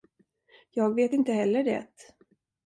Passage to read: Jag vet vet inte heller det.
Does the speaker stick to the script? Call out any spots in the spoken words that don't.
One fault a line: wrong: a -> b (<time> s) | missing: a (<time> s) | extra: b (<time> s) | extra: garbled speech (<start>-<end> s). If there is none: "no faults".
missing: vet (1.1 s)